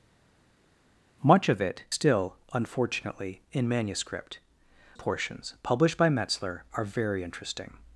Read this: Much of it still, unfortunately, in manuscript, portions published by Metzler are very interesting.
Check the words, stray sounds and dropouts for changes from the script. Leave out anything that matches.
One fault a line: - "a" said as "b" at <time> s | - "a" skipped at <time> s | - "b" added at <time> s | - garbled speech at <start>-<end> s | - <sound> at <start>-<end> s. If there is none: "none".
none